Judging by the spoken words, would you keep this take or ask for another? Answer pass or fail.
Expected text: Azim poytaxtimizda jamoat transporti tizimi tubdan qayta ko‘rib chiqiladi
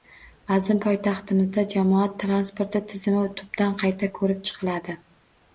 pass